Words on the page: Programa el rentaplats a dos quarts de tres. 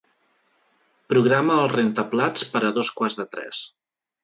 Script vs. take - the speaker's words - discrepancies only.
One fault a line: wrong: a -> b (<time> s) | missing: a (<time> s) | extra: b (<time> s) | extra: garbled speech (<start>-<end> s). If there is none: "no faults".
extra: per (2.5 s)